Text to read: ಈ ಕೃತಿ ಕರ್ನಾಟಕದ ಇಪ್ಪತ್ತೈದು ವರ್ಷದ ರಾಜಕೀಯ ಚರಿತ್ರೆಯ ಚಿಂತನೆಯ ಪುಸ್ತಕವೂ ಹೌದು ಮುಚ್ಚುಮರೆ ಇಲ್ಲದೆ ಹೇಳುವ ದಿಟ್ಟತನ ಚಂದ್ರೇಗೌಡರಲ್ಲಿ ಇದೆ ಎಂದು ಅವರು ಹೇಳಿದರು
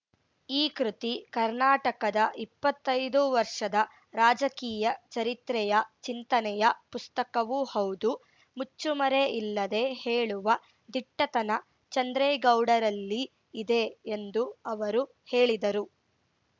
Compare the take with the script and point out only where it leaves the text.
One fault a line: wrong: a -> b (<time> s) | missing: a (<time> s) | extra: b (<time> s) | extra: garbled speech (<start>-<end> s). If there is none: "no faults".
no faults